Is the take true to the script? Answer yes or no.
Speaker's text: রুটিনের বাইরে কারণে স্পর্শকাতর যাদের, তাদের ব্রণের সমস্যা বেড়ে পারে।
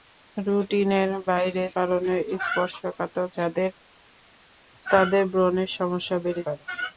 yes